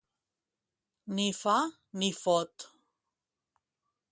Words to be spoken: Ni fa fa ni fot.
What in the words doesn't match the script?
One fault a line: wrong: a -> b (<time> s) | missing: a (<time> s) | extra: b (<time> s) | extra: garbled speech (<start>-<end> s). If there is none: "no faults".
missing: fa (1.6 s)